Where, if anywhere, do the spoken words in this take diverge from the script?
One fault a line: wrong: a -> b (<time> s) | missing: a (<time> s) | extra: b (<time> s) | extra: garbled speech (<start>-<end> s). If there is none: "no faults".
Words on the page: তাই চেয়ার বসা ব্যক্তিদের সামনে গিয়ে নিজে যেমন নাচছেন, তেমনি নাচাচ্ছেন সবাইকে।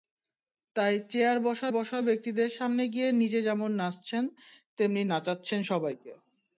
extra: বসা (1.7 s)